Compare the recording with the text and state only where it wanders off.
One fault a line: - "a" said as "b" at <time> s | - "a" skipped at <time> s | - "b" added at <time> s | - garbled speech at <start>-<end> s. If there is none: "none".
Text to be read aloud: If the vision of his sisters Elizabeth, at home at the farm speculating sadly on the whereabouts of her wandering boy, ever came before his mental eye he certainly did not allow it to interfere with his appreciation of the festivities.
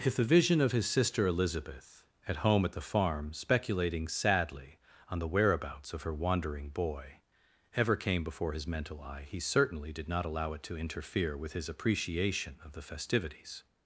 - "sisters" said as "sister" at 0.9 s